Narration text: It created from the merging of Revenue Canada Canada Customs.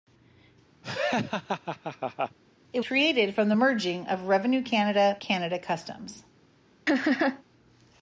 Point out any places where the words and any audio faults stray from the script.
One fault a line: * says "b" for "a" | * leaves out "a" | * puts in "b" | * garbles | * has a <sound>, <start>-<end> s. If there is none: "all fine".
* has a laugh, 0.8-2.4 s
* has a laugh, 6.9-7.4 s